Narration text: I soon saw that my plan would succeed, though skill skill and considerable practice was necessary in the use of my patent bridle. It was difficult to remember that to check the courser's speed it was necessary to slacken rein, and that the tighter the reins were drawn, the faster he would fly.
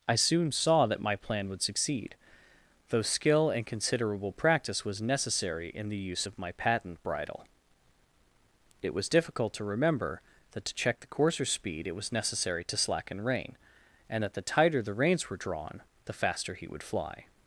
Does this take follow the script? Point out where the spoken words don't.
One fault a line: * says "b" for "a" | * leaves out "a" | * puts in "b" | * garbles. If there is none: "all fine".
* leaves out "skill"